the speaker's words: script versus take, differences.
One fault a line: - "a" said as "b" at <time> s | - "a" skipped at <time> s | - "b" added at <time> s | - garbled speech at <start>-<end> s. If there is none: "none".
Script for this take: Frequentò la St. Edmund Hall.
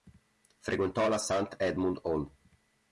none